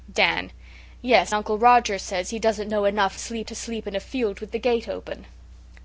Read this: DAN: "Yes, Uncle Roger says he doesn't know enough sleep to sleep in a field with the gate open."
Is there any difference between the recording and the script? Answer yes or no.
no